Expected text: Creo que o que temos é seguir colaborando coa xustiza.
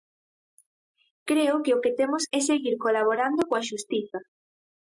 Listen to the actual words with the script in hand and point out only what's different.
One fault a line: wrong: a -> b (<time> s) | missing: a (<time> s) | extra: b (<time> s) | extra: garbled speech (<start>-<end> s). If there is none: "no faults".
no faults